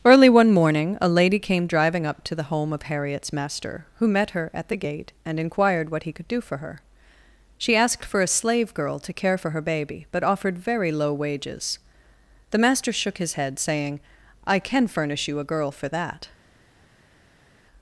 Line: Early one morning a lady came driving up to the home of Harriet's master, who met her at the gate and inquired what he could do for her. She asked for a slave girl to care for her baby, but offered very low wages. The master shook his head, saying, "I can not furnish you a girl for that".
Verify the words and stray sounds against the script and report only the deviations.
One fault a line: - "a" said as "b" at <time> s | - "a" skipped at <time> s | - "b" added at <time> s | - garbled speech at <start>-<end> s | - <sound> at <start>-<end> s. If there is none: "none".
- "not" skipped at 14.9 s